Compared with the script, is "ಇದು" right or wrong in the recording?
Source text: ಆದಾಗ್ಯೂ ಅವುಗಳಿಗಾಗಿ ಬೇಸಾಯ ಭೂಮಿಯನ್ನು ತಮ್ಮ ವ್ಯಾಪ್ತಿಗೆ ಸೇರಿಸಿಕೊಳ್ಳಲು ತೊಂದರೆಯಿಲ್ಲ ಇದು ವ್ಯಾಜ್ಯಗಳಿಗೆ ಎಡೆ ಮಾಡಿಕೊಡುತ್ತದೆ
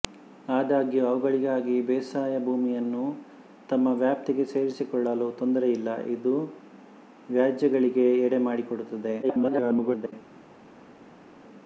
right